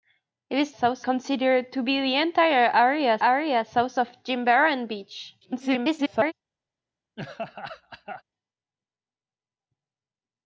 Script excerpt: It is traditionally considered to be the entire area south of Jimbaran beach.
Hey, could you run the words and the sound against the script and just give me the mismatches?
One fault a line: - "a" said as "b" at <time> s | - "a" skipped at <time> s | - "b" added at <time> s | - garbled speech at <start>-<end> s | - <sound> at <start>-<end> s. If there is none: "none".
- "traditionally" said as "south" at 0.7 s
- "area" added at 3.2 s
- garbled speech at 5.4-6.3 s
- laugh at 7.2-8.2 s